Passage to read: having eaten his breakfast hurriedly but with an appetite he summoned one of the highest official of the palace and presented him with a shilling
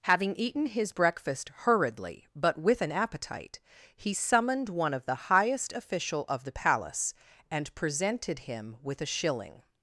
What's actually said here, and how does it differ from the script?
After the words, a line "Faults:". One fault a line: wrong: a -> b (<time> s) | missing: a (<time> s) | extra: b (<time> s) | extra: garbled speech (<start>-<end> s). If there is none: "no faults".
having eaten his breakfast hurriedly but with an appetite he summoned one of the highest official of the palace and presented him with a shilling
Faults:
no faults